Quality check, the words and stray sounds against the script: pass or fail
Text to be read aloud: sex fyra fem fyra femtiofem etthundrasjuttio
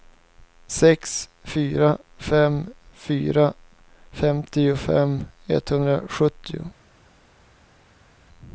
pass